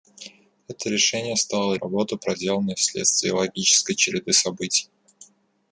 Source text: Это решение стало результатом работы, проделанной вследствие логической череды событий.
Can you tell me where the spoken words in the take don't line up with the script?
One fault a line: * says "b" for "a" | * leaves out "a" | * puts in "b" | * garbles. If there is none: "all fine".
* leaves out "результатом"